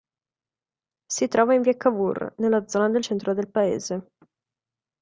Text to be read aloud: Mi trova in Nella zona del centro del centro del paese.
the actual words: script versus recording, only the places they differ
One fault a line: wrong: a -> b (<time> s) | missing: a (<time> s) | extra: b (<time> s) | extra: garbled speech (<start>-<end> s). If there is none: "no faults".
wrong: Mi -> Si (1.1 s)
extra: Via Cavour (1.6 s)
missing: centro del (3.5 s)